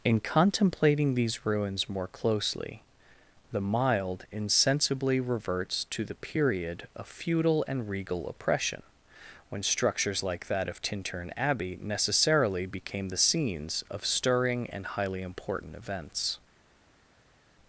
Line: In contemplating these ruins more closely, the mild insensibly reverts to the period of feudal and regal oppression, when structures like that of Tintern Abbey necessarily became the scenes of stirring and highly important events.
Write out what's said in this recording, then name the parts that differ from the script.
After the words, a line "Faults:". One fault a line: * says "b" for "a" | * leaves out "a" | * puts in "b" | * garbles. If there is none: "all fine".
In contemplating these ruins more closely, the mild insensibly reverts to the period of feudal and regal oppression, when structures like that of Tintern Abbey necessarily became the scenes of stirring and highly important events.
Faults:
all fine